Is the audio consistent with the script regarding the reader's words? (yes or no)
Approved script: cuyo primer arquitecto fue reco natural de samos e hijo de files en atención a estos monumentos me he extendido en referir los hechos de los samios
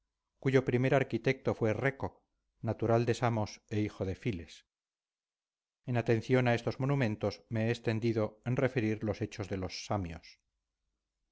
yes